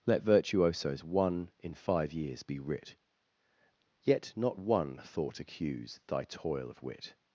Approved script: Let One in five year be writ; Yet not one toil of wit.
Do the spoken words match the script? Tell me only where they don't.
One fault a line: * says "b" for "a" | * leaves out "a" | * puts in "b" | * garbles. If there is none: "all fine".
* puts in "Virtuosos"
* says "years" for "year"
* puts in "thought accuse thy"